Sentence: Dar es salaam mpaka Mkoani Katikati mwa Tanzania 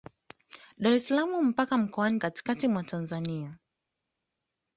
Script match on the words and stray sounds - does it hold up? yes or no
yes